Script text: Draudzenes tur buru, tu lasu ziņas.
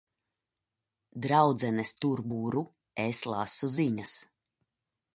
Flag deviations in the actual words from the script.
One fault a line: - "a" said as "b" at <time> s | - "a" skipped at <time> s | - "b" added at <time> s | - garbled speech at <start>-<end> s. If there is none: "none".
- "tu" said as "es" at 3.1 s